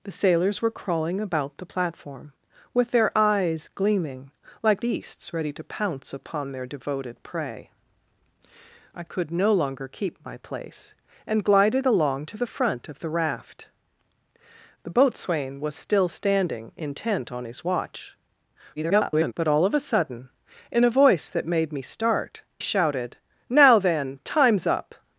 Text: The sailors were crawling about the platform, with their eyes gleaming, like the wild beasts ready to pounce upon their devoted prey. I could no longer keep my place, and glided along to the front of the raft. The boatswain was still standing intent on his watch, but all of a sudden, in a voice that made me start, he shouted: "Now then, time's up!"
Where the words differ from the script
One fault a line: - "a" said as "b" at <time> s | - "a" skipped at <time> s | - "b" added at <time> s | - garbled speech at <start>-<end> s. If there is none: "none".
- "the wild" skipped at 4.8 s
- garbled speech at 18.8-19.3 s
- "he" skipped at 22.4 s